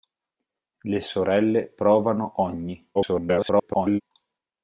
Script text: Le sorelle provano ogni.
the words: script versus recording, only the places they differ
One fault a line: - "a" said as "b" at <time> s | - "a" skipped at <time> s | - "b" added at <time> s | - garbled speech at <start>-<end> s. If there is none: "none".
- garbled speech at 2.9-4.0 s